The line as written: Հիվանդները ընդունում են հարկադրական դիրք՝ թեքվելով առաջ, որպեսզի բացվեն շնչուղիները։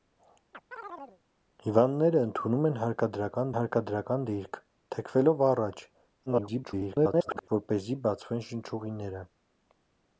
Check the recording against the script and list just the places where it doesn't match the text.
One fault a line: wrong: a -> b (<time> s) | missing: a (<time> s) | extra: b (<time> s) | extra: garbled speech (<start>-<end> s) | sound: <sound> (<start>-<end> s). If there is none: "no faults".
sound: chirp (0.5-1.2 s)
extra: հարկադրական (3.6 s)
extra: garbled speech (6.3-7.5 s)